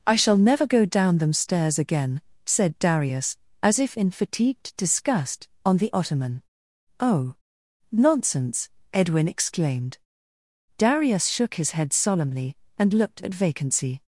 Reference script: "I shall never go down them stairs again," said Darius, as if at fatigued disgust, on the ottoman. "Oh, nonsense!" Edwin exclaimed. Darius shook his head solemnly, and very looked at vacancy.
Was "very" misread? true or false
true